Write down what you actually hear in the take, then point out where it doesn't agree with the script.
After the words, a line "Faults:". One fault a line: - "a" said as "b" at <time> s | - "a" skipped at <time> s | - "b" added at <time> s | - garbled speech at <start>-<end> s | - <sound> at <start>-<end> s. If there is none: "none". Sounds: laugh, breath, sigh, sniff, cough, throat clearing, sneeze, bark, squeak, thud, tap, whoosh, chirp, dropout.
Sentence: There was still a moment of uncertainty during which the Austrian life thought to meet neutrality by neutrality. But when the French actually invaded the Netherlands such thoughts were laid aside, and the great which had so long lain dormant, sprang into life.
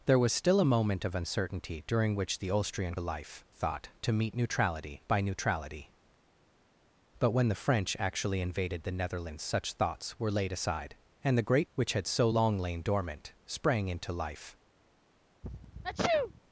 There was still a moment of uncertainty during which the Austrian life thought to meet neutrality by neutrality. But when the French actually invaded the Netherlands such thoughts were laid aside, and the great which had so long lain dormant, sprang into life.
Faults:
- sneeze at 15.4-16.4 s